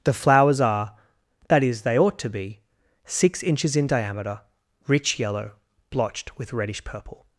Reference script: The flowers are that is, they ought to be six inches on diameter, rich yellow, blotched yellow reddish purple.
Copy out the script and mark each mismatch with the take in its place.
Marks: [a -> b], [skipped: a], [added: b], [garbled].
The flowers are that is, they ought to be six inches [on -> in] diameter, rich yellow, blotched [yellow -> with] reddish purple.